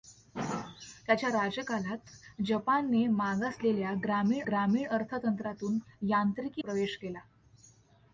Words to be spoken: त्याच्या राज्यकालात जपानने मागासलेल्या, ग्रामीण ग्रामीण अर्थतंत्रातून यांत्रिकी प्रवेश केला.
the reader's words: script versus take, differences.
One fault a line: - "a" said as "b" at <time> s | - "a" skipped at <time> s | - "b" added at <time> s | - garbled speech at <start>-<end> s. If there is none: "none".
none